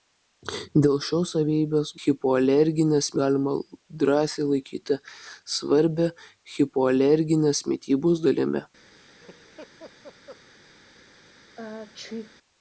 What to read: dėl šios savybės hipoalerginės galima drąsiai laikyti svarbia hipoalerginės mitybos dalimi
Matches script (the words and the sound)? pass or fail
fail